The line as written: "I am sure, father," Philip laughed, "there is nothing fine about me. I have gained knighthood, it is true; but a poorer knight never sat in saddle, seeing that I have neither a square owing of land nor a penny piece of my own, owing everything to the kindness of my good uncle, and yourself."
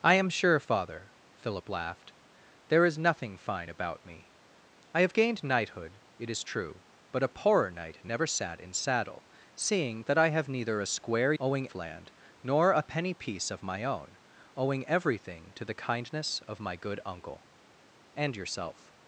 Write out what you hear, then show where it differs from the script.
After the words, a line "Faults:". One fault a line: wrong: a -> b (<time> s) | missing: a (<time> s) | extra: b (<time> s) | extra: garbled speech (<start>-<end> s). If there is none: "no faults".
"I am sure, father," Philip laughed, "there is nothing fine about me. I have gained knighthood, it is true; but a poorer knight never sat in saddle, seeing that I have neither a square owing of land nor a penny piece of my own, owing everything to the kindness of my good uncle, and yourself."
Faults:
no faults